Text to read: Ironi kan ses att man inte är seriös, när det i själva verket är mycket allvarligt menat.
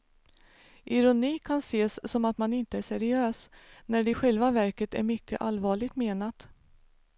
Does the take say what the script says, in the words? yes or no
no